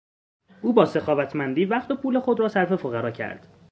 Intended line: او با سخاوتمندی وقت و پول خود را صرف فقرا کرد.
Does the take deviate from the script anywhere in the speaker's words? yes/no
no